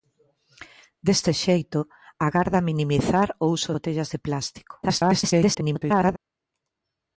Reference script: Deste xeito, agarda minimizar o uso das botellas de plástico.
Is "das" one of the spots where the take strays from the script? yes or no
yes